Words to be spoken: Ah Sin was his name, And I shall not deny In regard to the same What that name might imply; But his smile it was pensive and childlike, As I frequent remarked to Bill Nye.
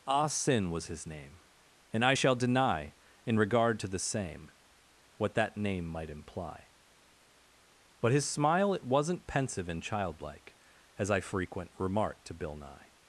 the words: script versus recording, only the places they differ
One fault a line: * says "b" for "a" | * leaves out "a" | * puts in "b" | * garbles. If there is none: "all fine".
* leaves out "not"
* says "wasn't" for "was"